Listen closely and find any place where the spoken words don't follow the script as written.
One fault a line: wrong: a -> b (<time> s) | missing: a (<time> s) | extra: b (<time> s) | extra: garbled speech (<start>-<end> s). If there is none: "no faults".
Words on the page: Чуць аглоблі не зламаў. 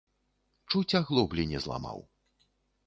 no faults